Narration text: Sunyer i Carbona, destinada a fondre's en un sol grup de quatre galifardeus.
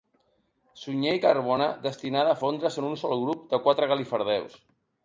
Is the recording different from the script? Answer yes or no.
no